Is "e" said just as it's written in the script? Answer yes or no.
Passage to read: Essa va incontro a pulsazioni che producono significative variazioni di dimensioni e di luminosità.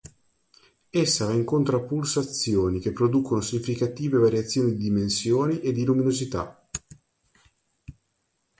yes